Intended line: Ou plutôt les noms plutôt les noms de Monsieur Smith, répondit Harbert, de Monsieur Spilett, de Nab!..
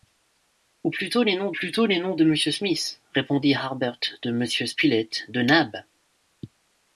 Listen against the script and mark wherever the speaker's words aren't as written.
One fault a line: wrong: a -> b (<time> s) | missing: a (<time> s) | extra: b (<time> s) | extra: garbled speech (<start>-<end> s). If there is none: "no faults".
no faults